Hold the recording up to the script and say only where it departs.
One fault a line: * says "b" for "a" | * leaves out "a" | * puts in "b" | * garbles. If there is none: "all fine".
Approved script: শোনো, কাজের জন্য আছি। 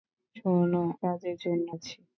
all fine